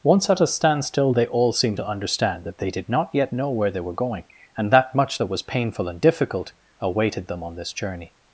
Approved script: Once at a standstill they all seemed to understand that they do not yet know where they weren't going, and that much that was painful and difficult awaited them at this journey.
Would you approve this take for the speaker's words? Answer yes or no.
no